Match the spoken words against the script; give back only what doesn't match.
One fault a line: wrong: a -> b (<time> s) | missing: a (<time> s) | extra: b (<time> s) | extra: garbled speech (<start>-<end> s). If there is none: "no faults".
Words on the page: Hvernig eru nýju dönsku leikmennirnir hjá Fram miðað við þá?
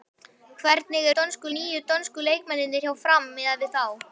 wrong: eru -> dönsku (1.2 s)